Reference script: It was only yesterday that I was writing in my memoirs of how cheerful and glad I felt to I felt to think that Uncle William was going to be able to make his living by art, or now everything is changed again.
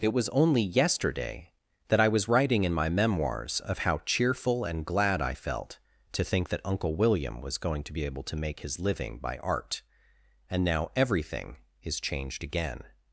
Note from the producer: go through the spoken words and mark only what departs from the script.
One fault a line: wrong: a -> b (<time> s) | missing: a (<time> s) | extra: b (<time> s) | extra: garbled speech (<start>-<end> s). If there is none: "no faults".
missing: I felt to (6.2 s)
wrong: or -> and (10.5 s)